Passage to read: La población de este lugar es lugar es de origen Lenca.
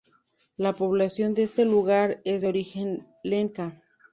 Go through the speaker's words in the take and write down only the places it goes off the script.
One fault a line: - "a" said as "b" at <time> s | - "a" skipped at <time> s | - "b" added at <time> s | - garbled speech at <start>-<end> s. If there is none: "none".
- "lugar es" skipped at 2.4 s